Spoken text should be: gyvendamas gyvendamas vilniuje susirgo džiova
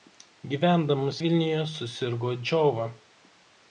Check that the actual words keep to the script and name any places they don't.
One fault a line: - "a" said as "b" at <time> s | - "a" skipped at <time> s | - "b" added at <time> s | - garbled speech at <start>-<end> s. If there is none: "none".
- "gyvendamas" skipped at 1.2 s